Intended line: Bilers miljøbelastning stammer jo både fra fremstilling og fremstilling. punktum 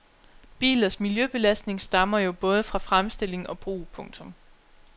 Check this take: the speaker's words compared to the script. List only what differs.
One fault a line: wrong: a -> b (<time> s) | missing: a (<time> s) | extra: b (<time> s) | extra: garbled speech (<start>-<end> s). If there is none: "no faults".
wrong: fremstilling -> brug (3.6 s)